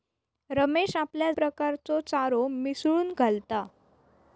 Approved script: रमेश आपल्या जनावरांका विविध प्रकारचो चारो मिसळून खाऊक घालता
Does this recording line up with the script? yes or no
no